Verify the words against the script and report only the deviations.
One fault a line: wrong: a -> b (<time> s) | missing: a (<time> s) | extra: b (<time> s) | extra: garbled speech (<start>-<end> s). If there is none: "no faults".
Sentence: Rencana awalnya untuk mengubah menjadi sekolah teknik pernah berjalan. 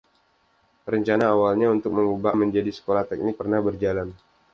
no faults